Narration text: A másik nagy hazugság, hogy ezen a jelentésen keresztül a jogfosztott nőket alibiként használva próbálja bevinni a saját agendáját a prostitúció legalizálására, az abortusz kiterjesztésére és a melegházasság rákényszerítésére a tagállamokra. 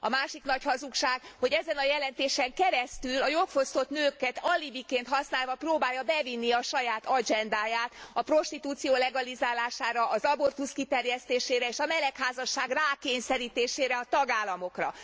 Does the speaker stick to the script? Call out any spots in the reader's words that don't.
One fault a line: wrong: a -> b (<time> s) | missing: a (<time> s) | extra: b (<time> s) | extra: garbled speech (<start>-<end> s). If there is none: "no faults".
no faults